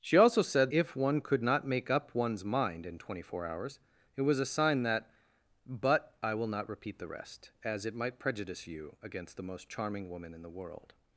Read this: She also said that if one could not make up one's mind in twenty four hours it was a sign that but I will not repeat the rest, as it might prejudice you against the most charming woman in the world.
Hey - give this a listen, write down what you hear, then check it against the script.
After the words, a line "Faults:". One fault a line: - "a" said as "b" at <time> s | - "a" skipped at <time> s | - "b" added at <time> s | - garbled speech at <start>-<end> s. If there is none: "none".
She also said if one could not make up one's mind in twenty four hours it was a sign that but I will not repeat the rest, as it might prejudice you against the most charming woman in the world.
Faults:
- "that" skipped at 0.7 s